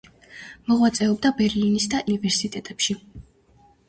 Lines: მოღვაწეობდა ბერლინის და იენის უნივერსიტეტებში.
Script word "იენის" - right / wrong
wrong